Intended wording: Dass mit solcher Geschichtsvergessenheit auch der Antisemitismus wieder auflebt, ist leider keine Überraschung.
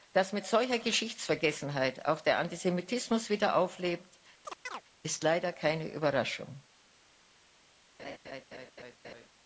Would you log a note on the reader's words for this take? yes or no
no